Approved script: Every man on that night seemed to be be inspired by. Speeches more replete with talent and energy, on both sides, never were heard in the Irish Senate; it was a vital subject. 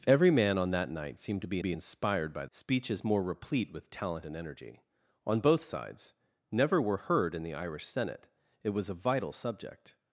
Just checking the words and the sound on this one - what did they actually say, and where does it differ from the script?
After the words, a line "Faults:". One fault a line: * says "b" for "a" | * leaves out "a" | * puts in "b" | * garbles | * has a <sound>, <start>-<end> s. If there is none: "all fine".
Every man on that night seemed to be be inspired by. Speeches more replete with talent and energy, on both sides, never were heard in the Irish Senate; it was a vital subject.
Faults:
all fine